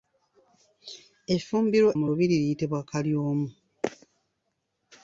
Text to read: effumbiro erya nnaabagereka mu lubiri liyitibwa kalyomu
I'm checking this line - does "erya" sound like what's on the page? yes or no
no